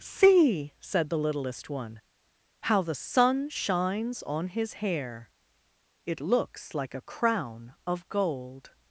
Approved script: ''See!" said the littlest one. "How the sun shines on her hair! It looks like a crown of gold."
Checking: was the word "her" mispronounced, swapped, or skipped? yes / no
yes